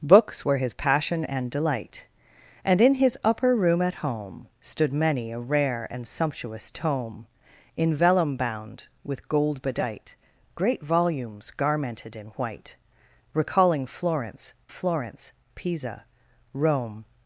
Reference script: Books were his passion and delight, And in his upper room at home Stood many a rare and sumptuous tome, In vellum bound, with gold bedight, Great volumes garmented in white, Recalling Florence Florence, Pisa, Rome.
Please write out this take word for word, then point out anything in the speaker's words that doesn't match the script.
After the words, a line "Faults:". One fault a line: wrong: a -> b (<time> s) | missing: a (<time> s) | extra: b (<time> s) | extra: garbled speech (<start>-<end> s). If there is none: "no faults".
Books were his passion and delight, And in his upper room at home Stood many a rare and sumptuous tome, In vellum bound, with gold bedight, Great volumes garmented in white, Recalling Florence Florence, Pisa, Rome.
Faults:
no faults